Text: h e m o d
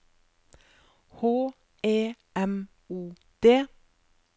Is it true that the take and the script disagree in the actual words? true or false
false